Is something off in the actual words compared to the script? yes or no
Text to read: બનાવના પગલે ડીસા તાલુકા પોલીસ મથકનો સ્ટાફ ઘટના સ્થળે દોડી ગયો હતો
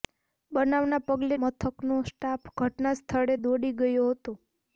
yes